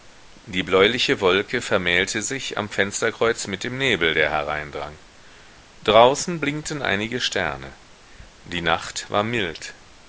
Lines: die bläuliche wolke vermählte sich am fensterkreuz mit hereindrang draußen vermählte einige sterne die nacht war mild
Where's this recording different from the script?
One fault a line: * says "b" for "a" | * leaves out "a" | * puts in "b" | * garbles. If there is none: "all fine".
* puts in "dem nebel der"
* says "blinkten" for "vermählte"